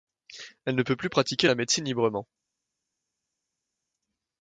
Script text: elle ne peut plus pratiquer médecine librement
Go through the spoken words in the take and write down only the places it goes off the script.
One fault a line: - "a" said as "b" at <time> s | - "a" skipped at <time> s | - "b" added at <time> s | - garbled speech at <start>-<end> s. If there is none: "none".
- "la" added at 1.4 s